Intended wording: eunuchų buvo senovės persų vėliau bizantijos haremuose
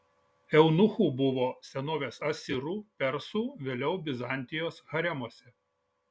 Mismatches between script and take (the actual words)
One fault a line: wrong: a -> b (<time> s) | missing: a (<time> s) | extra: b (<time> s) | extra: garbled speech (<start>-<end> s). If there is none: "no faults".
extra: asirų (2.3 s)